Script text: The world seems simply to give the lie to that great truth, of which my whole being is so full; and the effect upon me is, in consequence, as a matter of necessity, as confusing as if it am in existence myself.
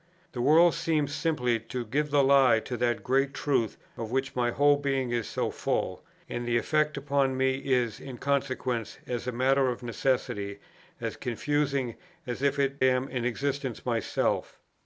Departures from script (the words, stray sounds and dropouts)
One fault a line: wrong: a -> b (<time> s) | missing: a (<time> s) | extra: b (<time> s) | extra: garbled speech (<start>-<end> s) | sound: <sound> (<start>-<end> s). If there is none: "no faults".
no faults